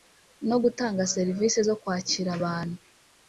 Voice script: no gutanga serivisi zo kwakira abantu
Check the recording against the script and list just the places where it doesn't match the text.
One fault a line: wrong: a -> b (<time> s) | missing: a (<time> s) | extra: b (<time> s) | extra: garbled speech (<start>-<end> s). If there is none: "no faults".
no faults